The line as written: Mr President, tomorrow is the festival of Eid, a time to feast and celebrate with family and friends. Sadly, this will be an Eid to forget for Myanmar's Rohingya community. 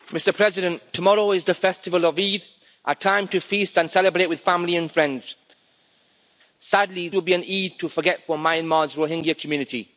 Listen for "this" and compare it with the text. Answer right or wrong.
wrong